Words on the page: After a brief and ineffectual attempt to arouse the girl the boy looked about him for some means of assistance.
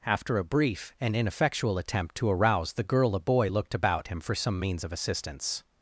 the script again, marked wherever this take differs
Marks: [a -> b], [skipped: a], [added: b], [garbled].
After a brief and ineffectual attempt to arouse the girl [the -> a] boy looked about him for some means of assistance.